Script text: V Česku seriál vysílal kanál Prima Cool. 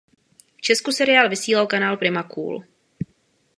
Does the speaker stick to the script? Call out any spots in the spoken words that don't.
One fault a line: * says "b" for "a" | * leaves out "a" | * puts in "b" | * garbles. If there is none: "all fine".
all fine